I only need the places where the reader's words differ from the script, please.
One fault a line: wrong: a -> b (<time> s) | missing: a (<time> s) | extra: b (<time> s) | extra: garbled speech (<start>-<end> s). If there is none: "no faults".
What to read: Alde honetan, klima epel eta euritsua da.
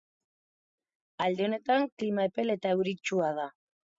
no faults